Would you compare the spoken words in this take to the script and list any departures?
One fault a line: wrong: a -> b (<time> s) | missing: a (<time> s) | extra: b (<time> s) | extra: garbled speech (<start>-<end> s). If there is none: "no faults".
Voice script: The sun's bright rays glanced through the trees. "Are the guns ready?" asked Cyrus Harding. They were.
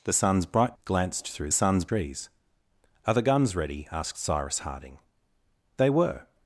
missing: rays (0.8 s)
wrong: the -> sun's (1.5 s)